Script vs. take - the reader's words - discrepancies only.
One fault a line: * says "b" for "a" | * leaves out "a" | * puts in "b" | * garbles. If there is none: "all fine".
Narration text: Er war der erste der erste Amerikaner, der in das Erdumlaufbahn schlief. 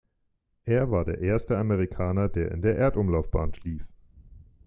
* leaves out "der erste"
* says "der" for "das"